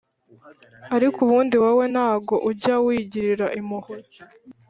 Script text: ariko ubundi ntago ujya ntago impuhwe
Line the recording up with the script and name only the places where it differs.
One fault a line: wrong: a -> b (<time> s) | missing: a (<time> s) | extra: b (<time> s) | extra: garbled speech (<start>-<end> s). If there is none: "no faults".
extra: wowe (1.6 s)
wrong: ntago -> wigirira (2.8 s)